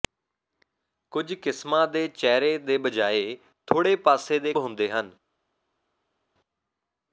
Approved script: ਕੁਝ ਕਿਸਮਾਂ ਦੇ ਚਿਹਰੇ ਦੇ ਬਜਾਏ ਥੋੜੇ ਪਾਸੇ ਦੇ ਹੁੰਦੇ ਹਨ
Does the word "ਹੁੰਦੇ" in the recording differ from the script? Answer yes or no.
no